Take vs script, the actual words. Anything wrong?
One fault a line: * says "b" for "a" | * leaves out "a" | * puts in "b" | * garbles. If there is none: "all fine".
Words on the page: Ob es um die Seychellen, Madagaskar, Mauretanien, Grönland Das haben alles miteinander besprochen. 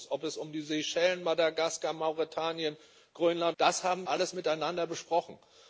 all fine